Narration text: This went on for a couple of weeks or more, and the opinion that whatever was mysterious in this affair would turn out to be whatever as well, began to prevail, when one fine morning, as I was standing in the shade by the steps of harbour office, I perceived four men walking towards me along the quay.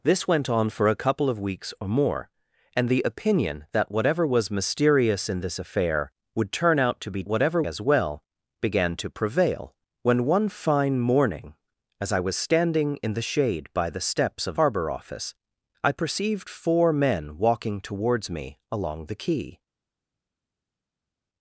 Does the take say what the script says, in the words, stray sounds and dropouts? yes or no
yes